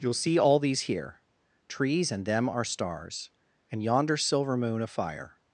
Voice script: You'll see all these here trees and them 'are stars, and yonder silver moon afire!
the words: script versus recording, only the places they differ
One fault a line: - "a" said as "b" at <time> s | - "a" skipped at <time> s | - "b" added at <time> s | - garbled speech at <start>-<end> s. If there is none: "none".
none